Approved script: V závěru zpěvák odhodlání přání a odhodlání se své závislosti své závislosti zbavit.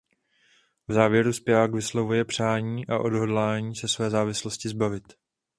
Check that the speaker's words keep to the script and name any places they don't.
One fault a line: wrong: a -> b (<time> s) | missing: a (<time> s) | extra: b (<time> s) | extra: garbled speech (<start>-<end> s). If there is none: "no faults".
wrong: odhodlání -> vyslovuje (1.7 s)
missing: své závislosti (4.7 s)